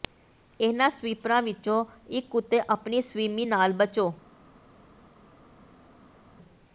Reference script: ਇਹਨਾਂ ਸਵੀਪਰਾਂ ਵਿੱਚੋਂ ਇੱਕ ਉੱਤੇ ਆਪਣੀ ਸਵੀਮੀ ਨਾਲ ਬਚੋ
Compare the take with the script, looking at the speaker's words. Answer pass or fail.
pass